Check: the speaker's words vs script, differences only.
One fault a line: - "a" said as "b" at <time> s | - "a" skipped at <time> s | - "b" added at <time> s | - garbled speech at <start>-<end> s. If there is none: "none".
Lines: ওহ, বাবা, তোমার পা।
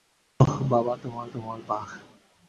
- "তোমার" added at 1.3 s